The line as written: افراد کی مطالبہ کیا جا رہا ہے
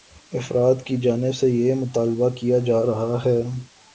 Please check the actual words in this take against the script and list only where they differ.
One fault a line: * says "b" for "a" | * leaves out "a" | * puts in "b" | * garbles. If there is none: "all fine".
* puts in "جانب سے یہ"